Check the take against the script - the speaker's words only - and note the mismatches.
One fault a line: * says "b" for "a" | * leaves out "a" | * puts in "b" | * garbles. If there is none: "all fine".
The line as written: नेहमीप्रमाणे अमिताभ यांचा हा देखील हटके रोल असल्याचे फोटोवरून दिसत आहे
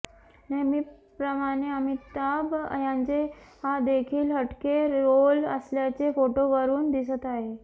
all fine